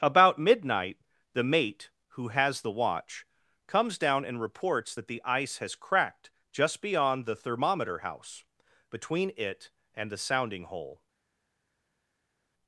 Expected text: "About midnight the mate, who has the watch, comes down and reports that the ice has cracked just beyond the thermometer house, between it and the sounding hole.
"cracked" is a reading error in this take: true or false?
false